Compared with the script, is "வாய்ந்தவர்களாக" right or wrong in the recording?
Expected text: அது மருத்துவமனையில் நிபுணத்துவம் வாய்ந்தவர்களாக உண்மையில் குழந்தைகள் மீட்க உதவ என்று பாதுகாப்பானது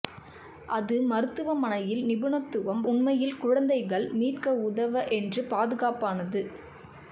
wrong